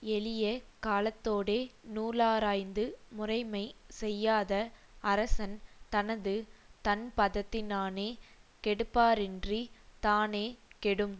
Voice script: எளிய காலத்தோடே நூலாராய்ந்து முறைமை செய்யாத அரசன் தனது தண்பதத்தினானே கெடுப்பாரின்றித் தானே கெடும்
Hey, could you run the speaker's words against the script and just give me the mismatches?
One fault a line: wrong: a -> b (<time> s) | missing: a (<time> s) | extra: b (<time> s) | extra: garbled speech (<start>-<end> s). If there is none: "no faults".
no faults